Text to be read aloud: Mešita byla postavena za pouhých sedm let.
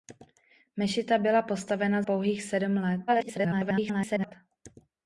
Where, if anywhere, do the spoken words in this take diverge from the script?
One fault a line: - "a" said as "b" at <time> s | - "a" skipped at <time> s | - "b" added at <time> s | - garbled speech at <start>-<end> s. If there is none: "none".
- "za" skipped at 2.0 s
- garbled speech at 3.1-4.3 s